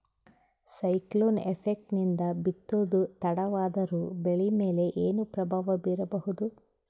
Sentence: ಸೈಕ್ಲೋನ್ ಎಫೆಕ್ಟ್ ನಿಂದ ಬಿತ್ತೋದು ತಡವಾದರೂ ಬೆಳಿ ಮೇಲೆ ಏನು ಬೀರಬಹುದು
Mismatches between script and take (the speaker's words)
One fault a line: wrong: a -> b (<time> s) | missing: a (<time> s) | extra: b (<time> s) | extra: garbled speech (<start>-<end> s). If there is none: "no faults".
extra: ಪ್ರಭಾವ (5.2 s)